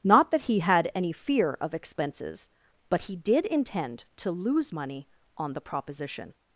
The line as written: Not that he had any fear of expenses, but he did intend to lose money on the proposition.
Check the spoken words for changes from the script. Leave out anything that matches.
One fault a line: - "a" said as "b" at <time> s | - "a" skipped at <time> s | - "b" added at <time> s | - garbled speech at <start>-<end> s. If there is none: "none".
none